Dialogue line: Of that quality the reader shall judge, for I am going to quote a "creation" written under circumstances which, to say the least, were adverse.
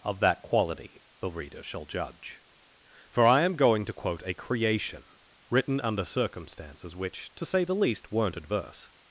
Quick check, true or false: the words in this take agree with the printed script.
false